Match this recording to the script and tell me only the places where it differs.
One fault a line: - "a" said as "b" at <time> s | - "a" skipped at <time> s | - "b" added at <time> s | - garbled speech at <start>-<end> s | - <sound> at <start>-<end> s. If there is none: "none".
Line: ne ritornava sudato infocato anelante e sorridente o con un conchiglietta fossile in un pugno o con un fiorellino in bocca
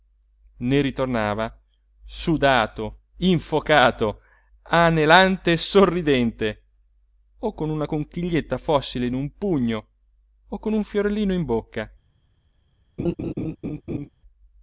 - "un" said as "una" at 7.7 s
- laugh at 13.0-14.1 s